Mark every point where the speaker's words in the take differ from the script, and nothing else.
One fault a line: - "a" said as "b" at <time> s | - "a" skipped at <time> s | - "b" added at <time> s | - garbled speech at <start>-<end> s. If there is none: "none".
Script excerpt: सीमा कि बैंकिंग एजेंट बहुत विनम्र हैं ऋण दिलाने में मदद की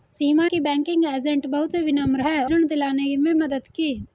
none